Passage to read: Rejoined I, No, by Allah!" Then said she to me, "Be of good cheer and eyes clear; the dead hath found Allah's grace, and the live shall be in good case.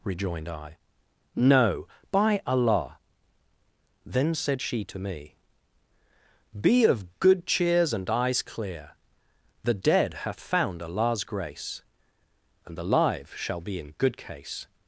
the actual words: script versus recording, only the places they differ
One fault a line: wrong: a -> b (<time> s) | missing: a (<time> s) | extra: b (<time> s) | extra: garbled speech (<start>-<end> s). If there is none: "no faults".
wrong: cheer -> cheers (7.5 s)